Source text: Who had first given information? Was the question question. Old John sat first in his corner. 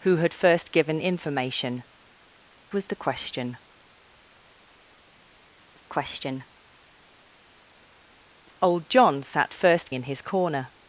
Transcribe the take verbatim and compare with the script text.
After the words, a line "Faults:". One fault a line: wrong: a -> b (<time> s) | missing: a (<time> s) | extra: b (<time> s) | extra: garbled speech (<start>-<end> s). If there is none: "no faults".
Who had first given information? Was the question question. Old John sat first in his corner.
Faults:
no faults